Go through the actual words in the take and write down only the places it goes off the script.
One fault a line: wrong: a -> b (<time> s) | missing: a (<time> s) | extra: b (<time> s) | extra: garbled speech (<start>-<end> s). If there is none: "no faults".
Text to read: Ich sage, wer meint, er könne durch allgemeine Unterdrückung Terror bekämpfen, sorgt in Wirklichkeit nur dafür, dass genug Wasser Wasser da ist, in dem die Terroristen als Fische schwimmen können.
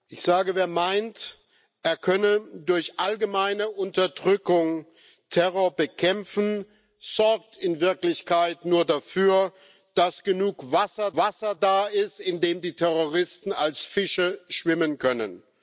no faults